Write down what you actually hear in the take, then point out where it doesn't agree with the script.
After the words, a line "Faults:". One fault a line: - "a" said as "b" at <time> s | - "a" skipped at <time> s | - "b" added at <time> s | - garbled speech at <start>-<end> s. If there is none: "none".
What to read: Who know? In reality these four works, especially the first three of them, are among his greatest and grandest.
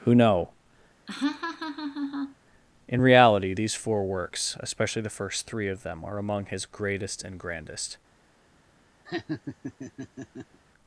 Who know? In reality these four works, especially the first three of them, are among his greatest and grandest.
Faults:
none